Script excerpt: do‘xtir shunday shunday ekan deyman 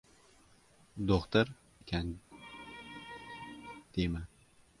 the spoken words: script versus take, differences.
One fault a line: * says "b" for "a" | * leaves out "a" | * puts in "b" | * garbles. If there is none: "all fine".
* leaves out "shunday shunday"